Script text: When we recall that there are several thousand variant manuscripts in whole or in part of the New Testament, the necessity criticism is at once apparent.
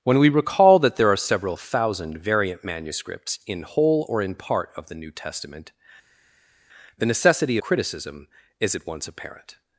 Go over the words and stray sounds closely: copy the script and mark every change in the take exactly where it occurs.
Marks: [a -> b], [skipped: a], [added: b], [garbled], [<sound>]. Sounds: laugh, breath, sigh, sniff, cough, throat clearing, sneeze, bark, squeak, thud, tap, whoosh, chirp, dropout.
When we recall that there are several thousand variant manuscripts in whole or in part of the New Testament, the necessity criticism is at once apparent.